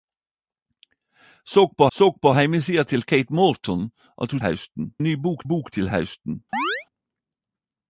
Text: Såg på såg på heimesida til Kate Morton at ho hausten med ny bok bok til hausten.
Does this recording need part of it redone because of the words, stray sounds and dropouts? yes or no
yes